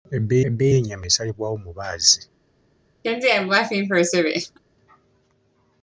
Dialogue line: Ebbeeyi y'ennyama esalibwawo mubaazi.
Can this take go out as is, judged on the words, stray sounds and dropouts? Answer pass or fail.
fail